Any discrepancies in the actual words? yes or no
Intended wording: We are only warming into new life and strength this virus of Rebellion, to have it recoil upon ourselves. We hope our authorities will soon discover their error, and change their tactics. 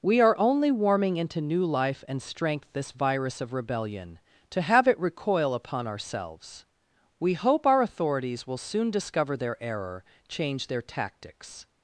yes